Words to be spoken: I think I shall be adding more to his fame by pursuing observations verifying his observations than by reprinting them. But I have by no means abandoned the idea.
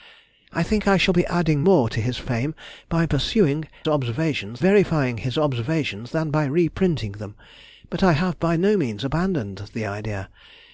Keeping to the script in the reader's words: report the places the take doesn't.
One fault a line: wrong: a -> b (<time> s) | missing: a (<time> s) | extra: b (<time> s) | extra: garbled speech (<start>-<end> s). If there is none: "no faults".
no faults